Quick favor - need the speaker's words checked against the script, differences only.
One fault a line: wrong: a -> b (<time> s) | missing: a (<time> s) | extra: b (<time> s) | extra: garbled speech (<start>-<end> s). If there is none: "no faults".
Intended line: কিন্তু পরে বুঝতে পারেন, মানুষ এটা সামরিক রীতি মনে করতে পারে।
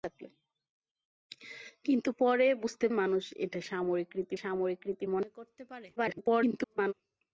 missing: পারেন (2.9 s)
extra: সামরিক রীতি (4.3 s)
extra: garbled speech (6.0-6.9 s)